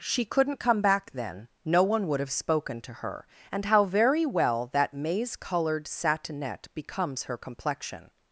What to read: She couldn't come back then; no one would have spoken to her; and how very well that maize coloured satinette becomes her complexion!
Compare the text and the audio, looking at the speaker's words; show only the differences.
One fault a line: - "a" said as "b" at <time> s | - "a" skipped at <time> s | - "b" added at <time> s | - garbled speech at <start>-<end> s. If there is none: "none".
none